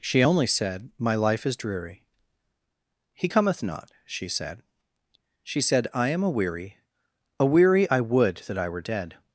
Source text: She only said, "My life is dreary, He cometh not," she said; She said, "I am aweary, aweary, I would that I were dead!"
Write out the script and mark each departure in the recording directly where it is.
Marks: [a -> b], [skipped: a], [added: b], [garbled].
She only said, "My life is dreary, He cometh not," she said; She said, "I am aweary, aweary, I would that I were dead!"